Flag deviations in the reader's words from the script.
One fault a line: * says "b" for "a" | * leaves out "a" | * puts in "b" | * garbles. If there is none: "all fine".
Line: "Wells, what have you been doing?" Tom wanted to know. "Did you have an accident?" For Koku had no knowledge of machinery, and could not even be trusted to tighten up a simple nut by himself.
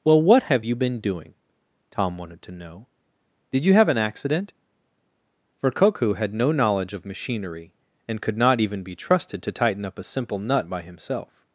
* says "Well" for "Wells"